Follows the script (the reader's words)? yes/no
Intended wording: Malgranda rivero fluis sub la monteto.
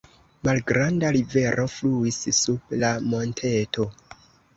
yes